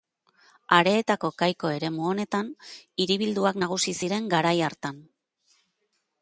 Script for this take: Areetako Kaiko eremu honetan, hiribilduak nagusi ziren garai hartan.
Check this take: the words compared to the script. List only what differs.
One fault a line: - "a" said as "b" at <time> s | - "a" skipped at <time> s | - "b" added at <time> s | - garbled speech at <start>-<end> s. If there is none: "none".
none